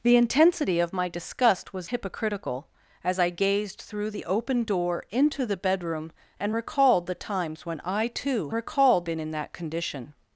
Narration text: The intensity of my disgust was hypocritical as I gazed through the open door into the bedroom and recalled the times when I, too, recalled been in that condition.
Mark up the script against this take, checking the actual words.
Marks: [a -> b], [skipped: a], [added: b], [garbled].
The intensity of my disgust was hypocritical as I gazed through the open door into the bedroom and recalled the times when I, too, recalled been in that condition.